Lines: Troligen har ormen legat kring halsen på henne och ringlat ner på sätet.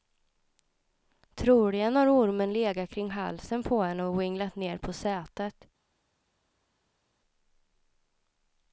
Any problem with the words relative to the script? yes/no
no